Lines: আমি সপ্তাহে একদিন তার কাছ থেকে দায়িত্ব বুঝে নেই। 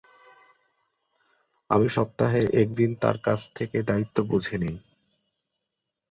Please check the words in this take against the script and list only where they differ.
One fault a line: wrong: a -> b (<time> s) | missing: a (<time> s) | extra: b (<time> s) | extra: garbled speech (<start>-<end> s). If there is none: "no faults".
no faults